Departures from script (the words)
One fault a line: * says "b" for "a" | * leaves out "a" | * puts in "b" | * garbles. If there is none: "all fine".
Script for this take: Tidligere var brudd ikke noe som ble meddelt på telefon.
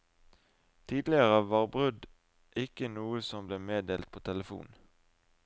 all fine